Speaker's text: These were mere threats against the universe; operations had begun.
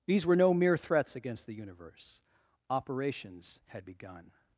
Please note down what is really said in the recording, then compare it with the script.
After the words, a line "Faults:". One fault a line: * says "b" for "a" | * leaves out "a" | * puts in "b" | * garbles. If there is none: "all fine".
These were no mere threats against the universe; operations had begun.
Faults:
* puts in "no"